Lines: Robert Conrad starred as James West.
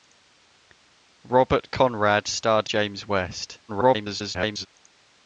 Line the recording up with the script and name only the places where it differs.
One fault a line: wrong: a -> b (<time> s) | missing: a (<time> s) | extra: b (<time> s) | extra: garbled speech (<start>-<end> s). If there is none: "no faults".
missing: as (2.7 s)
extra: garbled speech (3.7-4.7 s)